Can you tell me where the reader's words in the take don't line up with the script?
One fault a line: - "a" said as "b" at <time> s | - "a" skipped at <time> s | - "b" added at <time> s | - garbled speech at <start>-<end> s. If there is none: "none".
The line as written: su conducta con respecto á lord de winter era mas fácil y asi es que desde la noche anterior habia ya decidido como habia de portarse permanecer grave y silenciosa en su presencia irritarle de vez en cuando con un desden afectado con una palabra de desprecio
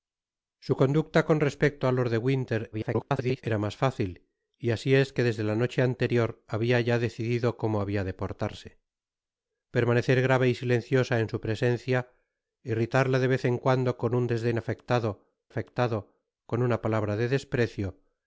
- garbled speech at 2.7-3.4 s
- "afectado" added at 15.5 s